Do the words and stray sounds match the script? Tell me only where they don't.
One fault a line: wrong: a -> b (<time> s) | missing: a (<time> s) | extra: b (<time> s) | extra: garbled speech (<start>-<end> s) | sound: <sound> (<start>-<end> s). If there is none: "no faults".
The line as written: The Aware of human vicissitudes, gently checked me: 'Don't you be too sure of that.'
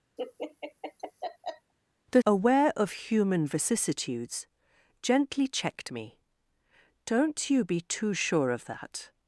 sound: laugh (0.2-1.7 s)